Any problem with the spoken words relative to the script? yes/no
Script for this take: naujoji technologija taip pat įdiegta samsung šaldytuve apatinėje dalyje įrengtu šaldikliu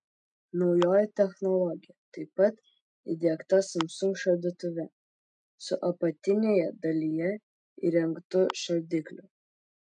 yes